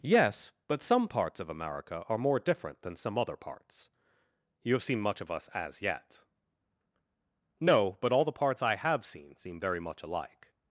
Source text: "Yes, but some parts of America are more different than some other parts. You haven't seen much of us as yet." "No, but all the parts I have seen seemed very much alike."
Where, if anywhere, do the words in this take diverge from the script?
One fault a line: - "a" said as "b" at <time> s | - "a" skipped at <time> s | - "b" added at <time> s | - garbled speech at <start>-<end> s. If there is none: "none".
- "haven't" said as "have" at 4.7 s
- "seemed" said as "seem" at 9.4 s